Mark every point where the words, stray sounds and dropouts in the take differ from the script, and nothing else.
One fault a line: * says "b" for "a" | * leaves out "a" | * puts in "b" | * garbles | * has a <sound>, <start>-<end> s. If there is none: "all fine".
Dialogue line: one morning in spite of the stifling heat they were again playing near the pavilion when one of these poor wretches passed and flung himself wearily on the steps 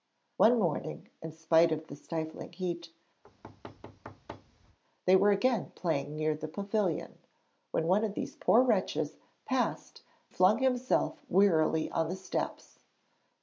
* has a thud, 3.2-4.8 s
* leaves out "and"